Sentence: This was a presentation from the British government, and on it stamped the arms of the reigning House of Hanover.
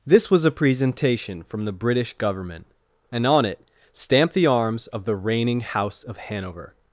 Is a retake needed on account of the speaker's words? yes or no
no